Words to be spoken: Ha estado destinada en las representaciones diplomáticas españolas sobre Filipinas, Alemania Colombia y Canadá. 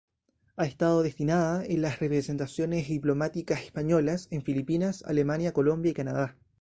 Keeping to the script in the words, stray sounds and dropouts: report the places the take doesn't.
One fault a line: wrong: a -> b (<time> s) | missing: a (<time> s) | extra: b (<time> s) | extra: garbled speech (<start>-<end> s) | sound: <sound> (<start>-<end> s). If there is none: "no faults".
wrong: sobre -> en (4.3 s)